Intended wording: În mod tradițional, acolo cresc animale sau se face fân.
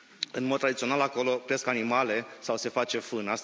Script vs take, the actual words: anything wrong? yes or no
no